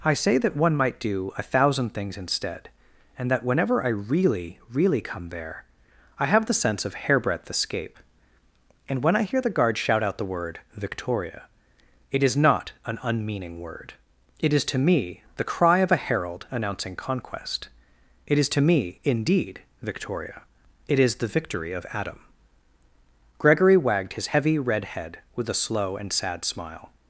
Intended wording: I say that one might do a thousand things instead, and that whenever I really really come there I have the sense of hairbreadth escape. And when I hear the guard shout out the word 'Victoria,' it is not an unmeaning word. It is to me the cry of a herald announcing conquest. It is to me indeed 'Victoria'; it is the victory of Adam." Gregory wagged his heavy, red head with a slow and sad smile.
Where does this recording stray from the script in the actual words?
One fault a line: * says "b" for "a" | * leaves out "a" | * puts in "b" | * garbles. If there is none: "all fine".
all fine